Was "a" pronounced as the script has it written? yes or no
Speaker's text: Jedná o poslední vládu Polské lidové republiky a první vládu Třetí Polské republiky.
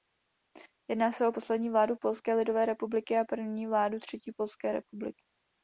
yes